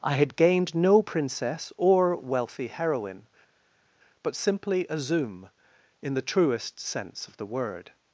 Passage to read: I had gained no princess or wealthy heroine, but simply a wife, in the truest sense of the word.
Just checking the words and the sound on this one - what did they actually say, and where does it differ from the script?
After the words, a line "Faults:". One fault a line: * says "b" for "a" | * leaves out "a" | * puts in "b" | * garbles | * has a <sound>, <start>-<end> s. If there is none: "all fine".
I had gained no princess or wealthy heroine, but simply a zoom, in the truest sense of the word.
Faults:
* says "zoom" for "wife"